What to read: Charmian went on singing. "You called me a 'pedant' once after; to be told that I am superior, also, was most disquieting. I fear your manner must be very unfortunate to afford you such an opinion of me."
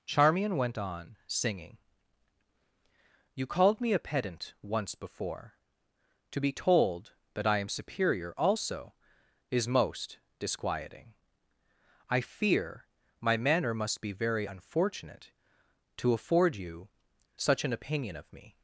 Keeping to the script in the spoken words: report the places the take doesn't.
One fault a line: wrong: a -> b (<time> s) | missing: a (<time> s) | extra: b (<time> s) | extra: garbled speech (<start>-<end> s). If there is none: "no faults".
wrong: after -> before (5.0 s)
wrong: was -> is (9.5 s)
wrong: your -> my (13.2 s)